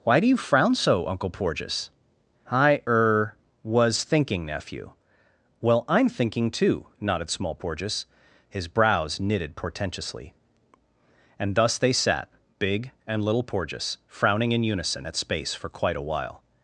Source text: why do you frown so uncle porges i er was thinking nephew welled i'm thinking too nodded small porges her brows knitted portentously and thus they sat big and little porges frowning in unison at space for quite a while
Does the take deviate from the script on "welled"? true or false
true